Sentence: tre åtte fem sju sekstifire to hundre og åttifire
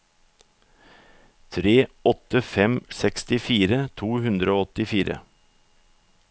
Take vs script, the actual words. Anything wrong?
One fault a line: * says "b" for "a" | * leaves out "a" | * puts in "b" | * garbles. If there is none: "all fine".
* leaves out "sju"